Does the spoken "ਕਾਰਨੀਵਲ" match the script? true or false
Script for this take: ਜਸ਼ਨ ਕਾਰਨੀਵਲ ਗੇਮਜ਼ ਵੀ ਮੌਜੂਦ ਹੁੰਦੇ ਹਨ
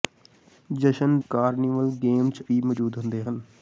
true